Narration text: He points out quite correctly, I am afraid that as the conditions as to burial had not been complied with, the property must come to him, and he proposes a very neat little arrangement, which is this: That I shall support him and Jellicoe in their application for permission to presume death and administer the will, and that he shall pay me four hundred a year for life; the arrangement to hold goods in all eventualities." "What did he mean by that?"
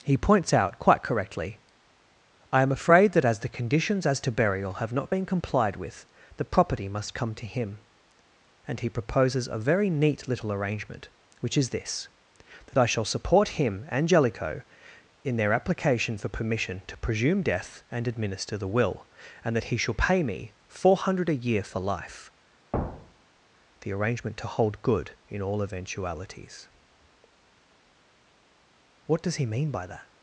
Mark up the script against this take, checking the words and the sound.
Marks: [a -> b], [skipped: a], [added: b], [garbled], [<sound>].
He points out quite correctly, I am afraid that as the conditions as to burial [had -> have] not been complied with, the property must come to him, and he proposes a very neat little arrangement, which is this: That I shall support him and Jellicoe in their application for permission to presume death and administer the will, and that he shall pay me four hundred a year for life; [thud] the arrangement to hold [goods -> good] in all eventualities." "What [did -> does] he mean by that?"